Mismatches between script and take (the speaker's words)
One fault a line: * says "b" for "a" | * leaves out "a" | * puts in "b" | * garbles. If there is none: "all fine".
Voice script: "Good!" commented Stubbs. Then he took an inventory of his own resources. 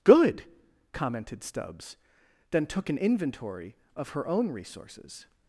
* leaves out "he"
* says "her" for "his"